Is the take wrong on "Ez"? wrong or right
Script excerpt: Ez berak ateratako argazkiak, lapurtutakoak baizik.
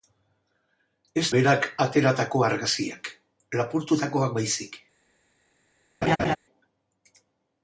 right